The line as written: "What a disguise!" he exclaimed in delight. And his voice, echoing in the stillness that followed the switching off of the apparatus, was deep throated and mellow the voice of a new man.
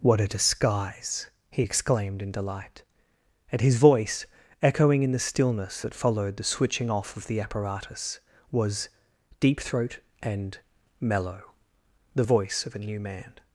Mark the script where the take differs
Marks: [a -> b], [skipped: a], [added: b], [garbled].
"What a disguise!" he exclaimed in delight. And his voice, echoing in the stillness that followed the switching off of the apparatus, was deep [throated -> throat] and mellow the voice of a new man.